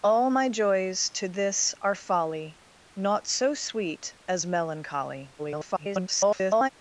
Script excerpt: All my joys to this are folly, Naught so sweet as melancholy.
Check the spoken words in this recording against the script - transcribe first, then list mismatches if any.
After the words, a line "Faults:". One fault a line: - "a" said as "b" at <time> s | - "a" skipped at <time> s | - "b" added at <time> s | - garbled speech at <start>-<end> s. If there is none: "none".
All my joys to this are folly, Naught so sweet as melancholy. [garbled]
Faults:
- garbled speech at 5.4-6.7 s